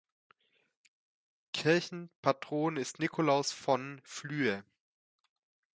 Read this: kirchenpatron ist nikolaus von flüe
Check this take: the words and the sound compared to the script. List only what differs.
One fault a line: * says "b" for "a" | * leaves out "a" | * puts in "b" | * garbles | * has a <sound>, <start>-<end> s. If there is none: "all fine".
all fine